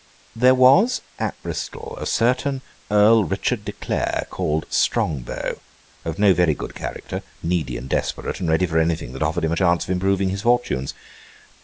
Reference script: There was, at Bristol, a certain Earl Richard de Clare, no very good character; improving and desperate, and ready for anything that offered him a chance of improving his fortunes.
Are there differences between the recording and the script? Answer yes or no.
yes